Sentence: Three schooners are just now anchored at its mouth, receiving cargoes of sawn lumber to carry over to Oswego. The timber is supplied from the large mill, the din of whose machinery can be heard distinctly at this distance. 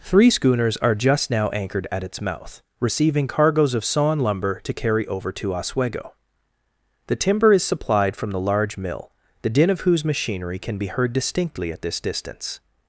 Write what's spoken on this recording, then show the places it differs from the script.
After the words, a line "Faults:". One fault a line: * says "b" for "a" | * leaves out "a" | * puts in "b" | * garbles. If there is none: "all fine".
Three schooners are just now anchored at its mouth, receiving cargoes of sawn lumber to carry over to Oswego. The timber is supplied from the large mill, the din of whose machinery can be heard distinctly at this distance.
Faults:
all fine